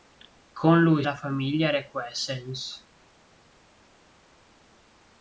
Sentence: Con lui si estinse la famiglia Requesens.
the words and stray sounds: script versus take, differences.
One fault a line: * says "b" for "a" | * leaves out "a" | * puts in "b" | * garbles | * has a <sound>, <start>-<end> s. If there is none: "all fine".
* leaves out "si estinse"